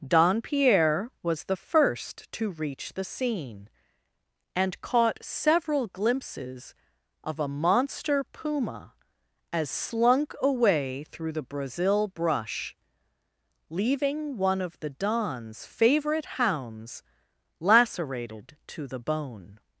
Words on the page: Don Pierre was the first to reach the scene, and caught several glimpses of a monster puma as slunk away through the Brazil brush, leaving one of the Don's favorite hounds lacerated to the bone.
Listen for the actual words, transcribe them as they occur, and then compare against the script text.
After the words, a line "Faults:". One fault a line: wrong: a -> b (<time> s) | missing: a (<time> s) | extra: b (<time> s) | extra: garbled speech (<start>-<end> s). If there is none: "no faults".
Don Pierre was the first to reach the scene, and caught several glimpses of a monster puma as slunk away through the Brazil brush, leaving one of the Don's favorite hounds lacerated to the bone.
Faults:
no faults